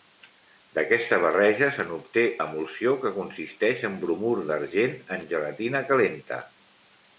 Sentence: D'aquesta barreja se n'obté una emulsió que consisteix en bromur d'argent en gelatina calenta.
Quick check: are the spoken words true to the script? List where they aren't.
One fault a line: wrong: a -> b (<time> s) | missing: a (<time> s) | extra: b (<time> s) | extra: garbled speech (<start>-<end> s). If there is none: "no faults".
missing: una (2.2 s)